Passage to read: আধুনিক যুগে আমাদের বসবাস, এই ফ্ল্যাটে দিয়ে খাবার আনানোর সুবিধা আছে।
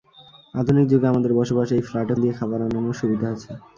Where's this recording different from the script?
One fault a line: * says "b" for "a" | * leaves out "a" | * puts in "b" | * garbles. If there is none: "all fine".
all fine